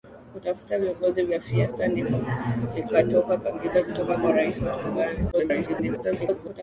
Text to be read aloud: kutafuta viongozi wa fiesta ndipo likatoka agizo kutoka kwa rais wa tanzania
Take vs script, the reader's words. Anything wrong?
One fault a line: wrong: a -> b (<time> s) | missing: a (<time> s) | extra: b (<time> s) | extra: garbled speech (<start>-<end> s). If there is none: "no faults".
extra: garbled speech (5.3-6.6 s)